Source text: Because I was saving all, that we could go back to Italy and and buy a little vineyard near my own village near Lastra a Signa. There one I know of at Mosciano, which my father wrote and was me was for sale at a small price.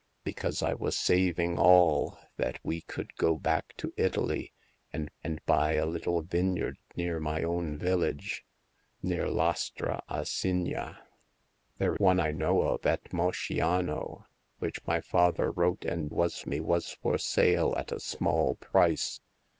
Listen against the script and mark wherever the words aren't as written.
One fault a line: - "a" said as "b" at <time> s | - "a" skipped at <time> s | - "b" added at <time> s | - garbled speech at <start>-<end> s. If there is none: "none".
none